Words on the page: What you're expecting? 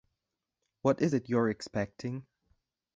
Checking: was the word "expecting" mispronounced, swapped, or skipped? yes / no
no